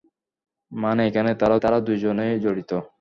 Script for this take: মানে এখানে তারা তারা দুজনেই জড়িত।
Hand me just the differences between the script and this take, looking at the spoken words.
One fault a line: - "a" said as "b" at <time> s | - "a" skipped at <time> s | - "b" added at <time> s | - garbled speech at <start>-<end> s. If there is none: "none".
none